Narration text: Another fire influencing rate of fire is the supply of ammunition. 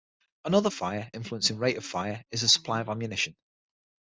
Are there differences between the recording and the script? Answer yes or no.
no